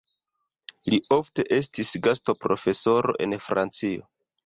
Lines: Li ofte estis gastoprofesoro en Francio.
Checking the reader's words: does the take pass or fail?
pass